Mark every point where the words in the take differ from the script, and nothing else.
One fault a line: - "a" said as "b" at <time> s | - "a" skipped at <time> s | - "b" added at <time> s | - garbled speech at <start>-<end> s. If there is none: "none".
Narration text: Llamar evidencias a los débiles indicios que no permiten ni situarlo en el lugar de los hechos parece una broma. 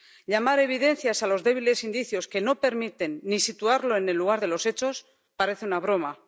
none